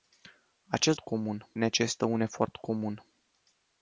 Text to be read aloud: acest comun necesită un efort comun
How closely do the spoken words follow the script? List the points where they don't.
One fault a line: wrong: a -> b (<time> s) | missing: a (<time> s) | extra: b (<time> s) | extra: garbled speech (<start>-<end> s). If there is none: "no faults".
no faults